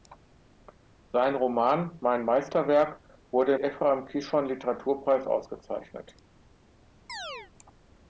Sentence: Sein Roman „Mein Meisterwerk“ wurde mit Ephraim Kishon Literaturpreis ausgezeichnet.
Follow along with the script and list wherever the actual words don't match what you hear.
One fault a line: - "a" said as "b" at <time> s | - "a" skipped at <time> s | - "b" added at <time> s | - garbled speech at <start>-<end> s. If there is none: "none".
- "mit" skipped at 3.6 s